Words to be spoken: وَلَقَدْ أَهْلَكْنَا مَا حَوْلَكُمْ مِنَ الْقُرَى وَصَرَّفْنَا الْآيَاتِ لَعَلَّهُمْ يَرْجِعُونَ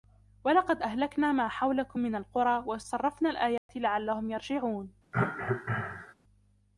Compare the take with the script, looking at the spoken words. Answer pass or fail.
pass